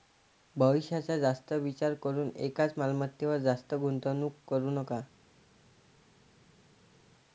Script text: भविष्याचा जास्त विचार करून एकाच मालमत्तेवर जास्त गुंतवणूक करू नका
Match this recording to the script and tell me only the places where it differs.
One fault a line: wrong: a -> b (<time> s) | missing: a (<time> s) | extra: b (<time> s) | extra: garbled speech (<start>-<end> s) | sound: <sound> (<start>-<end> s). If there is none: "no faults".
no faults